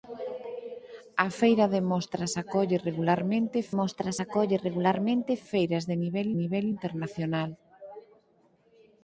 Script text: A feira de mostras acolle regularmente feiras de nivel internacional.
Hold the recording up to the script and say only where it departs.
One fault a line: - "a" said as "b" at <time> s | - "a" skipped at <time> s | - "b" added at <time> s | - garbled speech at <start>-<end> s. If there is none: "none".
- "mostras acolle regularmente" added at 3.8 s
- "nivel" added at 6.4 s